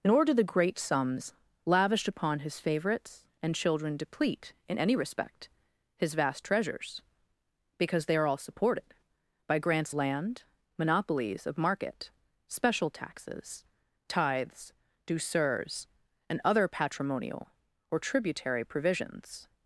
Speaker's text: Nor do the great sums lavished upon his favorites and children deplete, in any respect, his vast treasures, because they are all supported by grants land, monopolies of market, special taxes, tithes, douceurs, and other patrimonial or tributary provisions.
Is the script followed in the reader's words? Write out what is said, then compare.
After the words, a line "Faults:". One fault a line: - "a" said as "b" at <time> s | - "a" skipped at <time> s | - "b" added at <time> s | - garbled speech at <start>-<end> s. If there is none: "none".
Nor do the great sums lavished upon his favorites and children deplete, in any respect, his vast treasures, because they are all supported by grants land, monopolies of market, special taxes, tithes, douceurs, and other patrimonial or tributary provisions.
Faults:
none